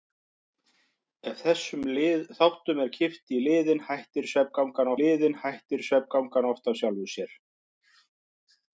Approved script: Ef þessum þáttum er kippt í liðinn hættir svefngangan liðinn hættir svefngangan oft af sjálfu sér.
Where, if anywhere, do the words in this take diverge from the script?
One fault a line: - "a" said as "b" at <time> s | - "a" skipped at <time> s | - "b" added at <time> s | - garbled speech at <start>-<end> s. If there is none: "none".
none